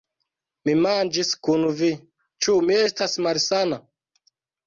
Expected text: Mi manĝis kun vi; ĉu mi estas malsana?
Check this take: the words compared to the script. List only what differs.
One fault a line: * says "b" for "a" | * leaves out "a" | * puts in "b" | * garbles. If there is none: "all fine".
all fine